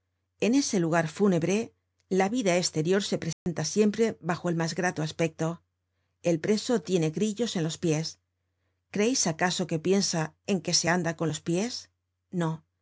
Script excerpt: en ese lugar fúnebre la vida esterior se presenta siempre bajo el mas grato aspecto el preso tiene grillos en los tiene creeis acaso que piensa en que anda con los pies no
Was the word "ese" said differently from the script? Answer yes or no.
no